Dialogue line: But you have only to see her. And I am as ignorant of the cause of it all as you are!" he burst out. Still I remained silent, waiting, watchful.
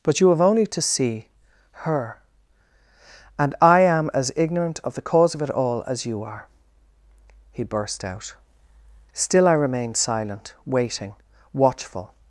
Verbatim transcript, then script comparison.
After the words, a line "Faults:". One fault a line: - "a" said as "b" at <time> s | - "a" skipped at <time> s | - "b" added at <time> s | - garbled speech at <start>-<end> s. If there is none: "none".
But you have only to see her. And I am as ignorant of the cause of it all as you are!" he burst out. Still I remained silent, waiting, watchful.
Faults:
none